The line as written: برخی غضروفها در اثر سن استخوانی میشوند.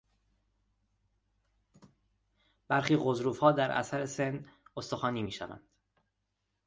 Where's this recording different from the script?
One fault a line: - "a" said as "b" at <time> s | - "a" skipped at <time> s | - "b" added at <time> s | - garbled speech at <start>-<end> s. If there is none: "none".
none